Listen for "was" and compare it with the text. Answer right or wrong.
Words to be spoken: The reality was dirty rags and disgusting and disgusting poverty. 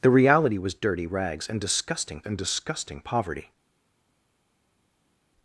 right